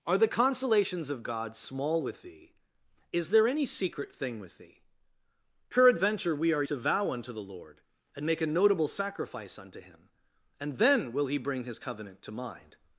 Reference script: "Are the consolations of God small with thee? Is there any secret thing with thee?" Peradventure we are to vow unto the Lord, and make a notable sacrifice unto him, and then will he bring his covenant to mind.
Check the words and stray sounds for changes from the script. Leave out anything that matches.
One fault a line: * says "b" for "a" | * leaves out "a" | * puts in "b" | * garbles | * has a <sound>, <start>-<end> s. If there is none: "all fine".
all fine